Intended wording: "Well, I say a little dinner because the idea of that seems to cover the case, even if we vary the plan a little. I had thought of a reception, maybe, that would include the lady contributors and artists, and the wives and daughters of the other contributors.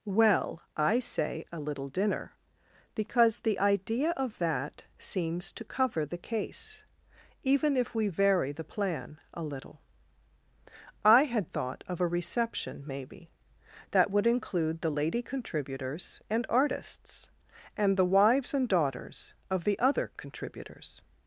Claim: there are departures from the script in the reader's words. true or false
false